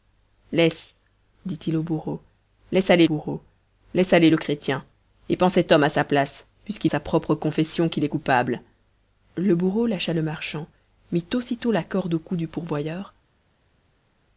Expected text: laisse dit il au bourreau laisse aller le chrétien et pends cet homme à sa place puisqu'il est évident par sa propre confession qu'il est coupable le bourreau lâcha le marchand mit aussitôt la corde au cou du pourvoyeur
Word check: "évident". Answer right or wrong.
wrong